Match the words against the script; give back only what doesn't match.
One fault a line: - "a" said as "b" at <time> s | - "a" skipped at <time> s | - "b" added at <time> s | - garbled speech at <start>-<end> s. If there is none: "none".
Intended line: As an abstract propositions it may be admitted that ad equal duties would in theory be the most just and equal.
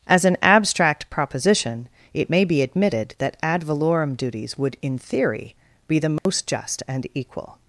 - "propositions" said as "proposition" at 1.1 s
- "equal" said as "valorem" at 3.6 s